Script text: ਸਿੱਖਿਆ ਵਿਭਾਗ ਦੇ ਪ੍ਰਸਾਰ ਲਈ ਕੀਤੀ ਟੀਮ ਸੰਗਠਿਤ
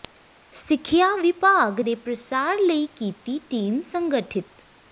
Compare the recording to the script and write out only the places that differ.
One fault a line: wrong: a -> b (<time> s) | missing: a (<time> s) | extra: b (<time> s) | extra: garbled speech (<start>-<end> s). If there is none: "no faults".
no faults